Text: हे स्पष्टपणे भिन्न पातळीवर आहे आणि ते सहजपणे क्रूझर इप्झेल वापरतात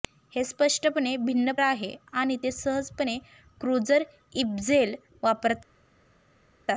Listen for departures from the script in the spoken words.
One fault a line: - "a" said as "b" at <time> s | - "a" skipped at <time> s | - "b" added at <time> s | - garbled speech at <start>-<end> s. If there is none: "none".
- "पातळीवर" skipped at 1.5 s